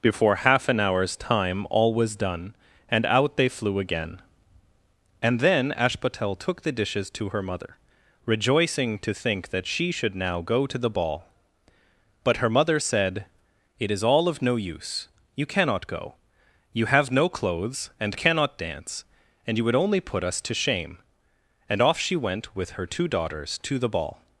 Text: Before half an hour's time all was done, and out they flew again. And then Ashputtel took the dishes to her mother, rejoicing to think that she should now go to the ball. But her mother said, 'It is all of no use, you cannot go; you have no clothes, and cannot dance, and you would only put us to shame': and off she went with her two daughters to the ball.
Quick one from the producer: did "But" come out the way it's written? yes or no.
yes